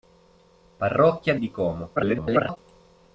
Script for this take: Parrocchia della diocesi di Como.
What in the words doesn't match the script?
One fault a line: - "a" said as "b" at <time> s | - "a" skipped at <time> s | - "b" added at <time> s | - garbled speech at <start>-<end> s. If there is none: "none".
- "della diocesi" skipped at 1.4 s
- garbled speech at 2.0-2.6 s